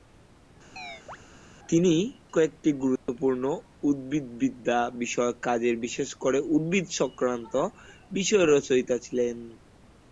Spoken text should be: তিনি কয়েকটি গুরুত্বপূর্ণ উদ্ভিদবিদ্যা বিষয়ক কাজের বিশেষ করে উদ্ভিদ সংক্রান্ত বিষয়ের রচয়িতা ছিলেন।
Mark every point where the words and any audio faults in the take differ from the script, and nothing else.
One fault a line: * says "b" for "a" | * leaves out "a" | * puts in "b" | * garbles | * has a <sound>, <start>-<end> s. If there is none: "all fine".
* has a chirp, 0.8-1.2 s
* has a dropout, 3.0-3.1 s